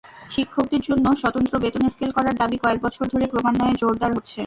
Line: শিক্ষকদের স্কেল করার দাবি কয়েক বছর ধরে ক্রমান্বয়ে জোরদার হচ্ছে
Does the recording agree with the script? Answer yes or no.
no